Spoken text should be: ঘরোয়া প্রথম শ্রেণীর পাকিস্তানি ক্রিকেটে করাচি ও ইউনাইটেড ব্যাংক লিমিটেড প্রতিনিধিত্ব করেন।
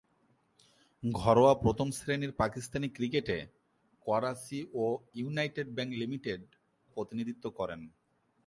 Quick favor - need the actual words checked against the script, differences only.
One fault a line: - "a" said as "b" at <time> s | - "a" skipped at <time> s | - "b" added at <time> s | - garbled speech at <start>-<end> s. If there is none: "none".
none